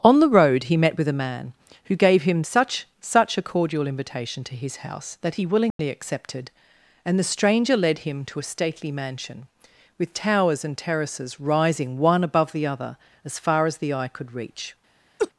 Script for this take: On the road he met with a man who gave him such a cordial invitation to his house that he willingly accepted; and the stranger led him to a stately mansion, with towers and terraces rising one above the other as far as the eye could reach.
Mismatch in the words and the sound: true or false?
true